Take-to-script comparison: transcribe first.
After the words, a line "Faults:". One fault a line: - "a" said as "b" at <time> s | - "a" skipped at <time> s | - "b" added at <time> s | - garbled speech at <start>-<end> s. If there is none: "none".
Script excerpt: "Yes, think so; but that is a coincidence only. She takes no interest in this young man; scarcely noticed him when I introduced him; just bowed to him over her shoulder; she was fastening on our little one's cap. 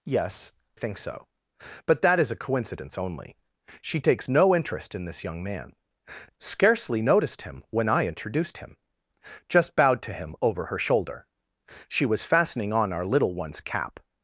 "Yes, think so; but that is a coincidence only. She takes no interest in this young man; scarcely noticed him when I introduced him; just bowed to him over her shoulder; she was fastening on our little one's cap.
Faults:
none